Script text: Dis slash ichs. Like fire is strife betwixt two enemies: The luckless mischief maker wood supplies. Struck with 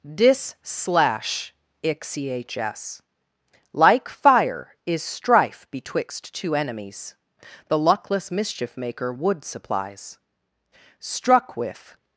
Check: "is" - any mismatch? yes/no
no